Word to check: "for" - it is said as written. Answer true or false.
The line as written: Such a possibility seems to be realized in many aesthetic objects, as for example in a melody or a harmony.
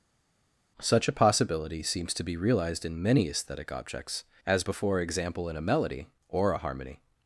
false